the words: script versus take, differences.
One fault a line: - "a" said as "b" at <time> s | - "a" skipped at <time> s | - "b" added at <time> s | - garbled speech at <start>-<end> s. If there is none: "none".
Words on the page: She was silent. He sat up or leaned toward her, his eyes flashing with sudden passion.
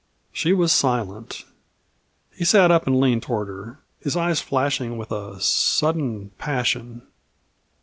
- "or" said as "and" at 2.9 s
- "a" added at 5.1 s